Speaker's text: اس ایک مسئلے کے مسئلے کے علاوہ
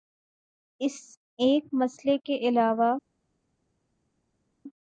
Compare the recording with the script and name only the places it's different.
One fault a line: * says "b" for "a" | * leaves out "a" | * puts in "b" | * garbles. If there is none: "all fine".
* leaves out "مسئلے کے"